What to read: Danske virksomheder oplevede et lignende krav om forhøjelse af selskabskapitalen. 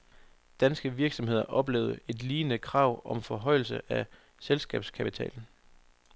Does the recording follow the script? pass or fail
pass